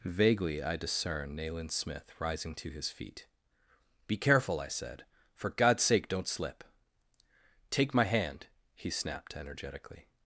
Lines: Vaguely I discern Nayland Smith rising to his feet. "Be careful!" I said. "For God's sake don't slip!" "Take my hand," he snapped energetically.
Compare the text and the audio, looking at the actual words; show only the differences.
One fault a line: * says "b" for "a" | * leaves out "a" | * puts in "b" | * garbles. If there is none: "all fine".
all fine